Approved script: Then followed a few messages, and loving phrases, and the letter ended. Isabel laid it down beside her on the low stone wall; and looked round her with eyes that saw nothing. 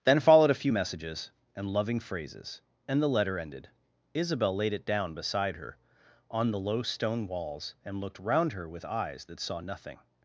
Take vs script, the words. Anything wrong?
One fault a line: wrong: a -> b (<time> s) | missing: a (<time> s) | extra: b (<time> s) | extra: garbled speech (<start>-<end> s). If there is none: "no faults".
wrong: wall -> walls (7.3 s)